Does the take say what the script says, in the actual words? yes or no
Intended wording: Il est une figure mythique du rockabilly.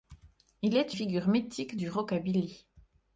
no